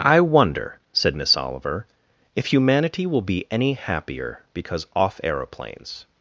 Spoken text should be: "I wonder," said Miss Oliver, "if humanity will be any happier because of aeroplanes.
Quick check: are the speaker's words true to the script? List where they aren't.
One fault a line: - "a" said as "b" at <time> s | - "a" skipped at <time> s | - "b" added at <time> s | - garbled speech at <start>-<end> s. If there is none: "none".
- "of" said as "off" at 4.9 s